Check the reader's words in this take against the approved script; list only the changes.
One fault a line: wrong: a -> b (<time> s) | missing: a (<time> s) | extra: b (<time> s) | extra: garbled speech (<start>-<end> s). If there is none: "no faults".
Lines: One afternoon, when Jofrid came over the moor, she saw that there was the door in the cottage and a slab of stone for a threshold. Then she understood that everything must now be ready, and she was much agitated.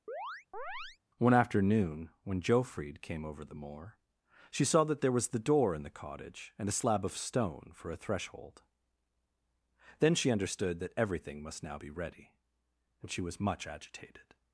no faults